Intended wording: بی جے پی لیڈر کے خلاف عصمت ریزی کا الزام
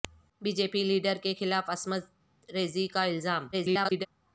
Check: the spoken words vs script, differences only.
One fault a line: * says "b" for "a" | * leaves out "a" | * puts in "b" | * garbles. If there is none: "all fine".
* garbles